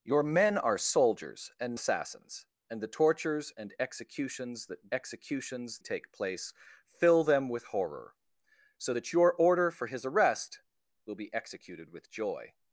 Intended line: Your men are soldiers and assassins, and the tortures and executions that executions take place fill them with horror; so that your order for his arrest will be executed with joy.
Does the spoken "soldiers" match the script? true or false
true